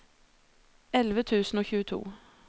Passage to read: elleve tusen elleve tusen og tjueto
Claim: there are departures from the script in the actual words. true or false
true